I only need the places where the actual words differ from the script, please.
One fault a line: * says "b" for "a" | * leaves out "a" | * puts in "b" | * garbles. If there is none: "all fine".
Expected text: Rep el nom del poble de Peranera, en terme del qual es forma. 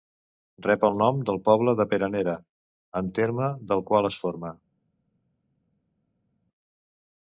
all fine